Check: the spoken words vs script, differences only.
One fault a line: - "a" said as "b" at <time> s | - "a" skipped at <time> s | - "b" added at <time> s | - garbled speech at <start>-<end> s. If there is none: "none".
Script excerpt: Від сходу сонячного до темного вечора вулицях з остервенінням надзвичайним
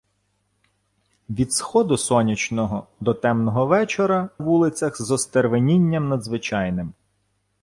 none